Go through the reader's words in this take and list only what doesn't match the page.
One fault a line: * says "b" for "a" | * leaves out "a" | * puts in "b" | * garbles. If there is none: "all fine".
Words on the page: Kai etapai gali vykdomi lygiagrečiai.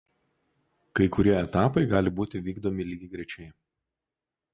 * puts in "kurie"
* puts in "būti"